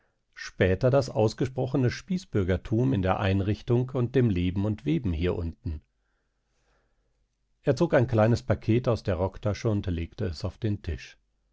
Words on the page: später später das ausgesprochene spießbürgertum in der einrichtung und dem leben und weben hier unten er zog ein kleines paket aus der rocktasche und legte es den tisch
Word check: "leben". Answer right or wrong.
right